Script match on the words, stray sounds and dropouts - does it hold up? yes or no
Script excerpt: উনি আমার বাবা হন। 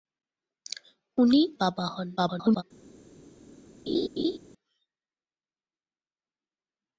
no